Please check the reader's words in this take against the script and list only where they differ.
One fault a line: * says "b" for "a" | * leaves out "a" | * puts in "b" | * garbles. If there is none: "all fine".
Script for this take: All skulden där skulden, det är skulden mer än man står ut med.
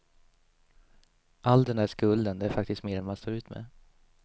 * says "den" for "skulden"
* says "faktiskt" for "skulden"